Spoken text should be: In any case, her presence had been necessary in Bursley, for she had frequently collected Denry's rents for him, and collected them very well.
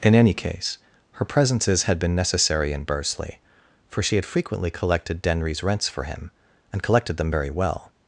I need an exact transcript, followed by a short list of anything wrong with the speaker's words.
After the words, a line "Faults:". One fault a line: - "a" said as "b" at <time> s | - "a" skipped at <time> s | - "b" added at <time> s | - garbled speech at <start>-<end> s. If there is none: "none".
In any case, her presences had been necessary in Bursley, for she had frequently collected Denry's rents for him, and collected them very well.
Faults:
- "presence" said as "presences" at 1.2 s